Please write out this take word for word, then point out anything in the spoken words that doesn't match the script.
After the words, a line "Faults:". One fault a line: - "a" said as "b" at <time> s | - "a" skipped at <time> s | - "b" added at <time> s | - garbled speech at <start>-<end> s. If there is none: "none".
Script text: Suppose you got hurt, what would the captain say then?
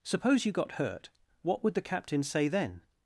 Suppose you got hurt, what would the captain say then?
Faults:
none